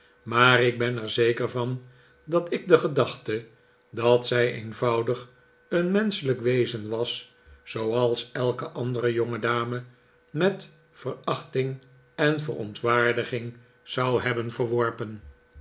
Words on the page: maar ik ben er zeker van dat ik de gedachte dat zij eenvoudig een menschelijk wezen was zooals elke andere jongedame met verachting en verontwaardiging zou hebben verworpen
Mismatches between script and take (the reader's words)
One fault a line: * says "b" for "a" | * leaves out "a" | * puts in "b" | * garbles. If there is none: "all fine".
all fine